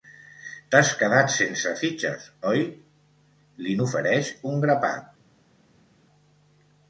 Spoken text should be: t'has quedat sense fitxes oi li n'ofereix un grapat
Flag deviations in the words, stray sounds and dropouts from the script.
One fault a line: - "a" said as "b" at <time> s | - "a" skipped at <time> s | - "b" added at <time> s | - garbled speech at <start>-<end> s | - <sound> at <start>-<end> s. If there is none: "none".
none